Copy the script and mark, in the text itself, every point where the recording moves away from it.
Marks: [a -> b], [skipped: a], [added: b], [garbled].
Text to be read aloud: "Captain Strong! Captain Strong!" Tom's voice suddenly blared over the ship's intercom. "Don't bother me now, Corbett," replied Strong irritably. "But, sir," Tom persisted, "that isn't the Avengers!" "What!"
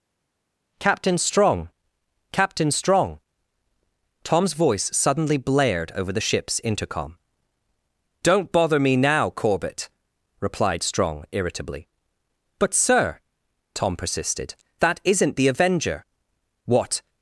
"Captain Strong! Captain Strong!" Tom's voice suddenly blared over the ship's intercom. "Don't bother me now, Corbett," replied Strong irritably. "But, sir," Tom persisted, "that isn't the [Avengers!" -> Avenger] "What!"